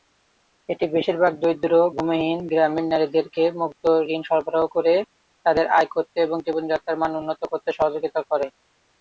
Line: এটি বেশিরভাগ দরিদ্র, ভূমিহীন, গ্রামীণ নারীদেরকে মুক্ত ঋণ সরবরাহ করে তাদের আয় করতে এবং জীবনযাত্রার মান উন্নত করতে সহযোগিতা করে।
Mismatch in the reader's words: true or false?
false